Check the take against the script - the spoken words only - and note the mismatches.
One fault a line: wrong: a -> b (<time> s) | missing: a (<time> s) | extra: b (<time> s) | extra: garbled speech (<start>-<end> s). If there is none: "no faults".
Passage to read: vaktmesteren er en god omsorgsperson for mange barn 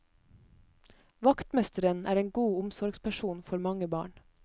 no faults